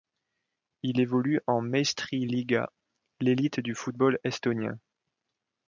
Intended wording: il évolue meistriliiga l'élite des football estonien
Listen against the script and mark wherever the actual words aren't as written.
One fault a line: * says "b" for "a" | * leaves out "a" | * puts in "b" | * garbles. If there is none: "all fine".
* puts in "en"
* says "du" for "des"